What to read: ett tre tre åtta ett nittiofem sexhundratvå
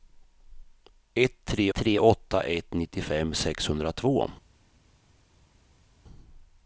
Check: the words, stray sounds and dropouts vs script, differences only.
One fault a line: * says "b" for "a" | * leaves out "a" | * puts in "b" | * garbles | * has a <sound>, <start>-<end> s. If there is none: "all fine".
all fine